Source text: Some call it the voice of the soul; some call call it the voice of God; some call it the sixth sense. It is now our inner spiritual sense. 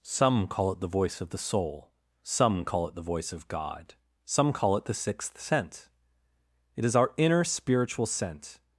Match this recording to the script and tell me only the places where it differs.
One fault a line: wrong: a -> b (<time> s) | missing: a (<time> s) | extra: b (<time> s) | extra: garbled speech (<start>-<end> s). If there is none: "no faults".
missing: call (2.9 s)
missing: now (7.0 s)